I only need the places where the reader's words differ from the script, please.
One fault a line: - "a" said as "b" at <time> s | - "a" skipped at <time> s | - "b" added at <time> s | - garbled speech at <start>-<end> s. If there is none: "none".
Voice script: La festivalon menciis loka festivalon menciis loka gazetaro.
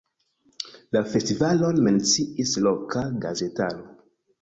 - "festivalon menciis loka" skipped at 3.1 s